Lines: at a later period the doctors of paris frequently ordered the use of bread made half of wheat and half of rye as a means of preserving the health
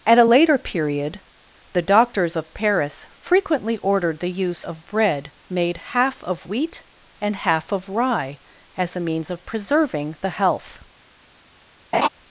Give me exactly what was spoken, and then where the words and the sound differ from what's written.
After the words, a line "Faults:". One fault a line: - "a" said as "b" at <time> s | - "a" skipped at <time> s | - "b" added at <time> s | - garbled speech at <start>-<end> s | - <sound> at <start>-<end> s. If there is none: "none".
at a later period the doctors of paris frequently ordered the use of bread made half of wheat and half of rye as a means of preserving the health
Faults:
- laugh at 11.9-12.1 s